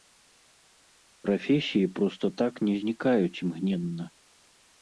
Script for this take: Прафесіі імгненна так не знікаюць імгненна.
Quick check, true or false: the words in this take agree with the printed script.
false